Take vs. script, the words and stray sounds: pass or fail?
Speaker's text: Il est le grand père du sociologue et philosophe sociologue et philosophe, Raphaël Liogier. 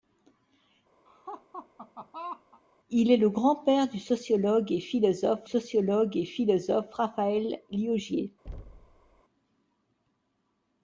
fail